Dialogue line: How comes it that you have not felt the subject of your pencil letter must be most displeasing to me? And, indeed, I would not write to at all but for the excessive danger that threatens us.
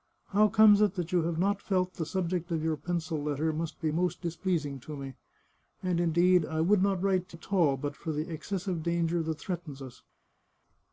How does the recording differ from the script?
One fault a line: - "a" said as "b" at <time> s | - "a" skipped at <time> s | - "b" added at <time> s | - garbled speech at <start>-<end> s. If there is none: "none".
none